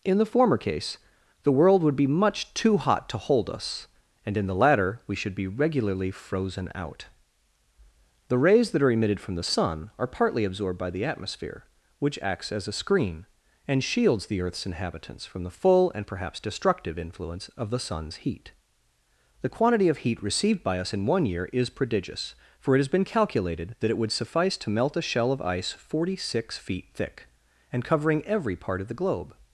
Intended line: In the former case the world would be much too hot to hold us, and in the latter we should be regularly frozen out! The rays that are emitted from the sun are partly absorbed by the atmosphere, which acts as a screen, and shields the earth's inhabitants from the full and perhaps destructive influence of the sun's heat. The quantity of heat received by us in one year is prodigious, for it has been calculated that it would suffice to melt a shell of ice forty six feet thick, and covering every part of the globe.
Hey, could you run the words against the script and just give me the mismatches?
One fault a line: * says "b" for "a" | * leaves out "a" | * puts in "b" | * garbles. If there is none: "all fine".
all fine